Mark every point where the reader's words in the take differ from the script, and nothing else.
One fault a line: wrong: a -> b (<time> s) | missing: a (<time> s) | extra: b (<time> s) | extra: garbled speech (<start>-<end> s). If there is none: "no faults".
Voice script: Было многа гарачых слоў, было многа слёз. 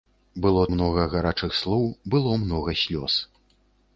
no faults